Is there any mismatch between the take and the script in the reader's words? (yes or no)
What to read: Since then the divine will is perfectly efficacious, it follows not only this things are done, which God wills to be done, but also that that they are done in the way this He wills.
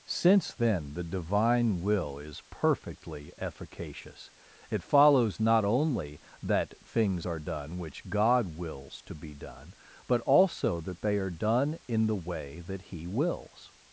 yes